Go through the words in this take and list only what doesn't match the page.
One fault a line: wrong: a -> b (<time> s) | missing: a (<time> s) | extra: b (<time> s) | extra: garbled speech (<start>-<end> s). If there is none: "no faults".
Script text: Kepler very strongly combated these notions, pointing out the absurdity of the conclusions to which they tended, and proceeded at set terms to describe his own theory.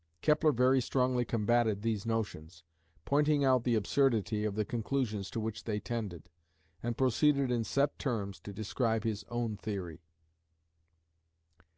wrong: at -> in (7.5 s)